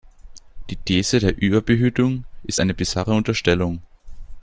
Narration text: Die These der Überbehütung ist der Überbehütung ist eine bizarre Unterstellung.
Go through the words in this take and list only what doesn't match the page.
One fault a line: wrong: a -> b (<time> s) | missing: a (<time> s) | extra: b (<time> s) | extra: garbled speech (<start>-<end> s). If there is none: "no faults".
missing: der Überbehütung ist (2.6 s)